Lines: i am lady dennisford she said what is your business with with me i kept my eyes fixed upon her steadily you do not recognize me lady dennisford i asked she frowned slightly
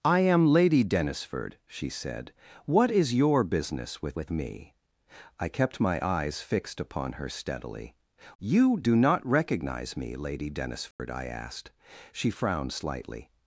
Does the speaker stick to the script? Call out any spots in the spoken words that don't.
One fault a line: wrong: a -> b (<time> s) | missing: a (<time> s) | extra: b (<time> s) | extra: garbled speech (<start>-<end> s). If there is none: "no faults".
no faults